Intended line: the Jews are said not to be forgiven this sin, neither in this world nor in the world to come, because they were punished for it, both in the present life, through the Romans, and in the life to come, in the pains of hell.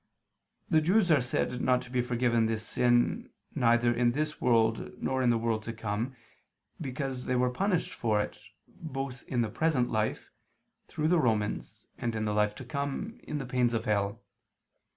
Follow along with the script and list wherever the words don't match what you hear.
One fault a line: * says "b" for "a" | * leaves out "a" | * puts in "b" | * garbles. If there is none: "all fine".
all fine